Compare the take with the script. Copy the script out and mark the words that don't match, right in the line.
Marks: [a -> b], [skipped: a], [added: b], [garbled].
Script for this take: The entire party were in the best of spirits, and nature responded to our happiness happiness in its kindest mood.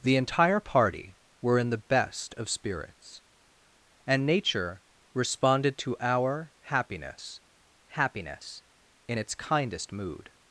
The entire party were in the best of spirits, and nature responded to our happiness happiness in its kindest mood.